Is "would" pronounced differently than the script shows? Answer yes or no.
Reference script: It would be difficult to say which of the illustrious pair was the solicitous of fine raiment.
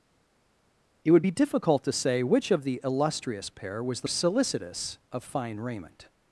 no